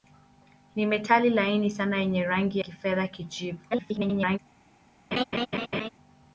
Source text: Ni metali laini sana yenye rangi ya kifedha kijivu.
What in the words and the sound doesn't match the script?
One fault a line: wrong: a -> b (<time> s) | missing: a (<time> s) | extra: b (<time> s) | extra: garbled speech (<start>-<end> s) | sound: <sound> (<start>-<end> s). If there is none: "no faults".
missing: ya (2.6 s)
extra: garbled speech (3.7-4.4 s)
sound: laugh (5.1-5.9 s)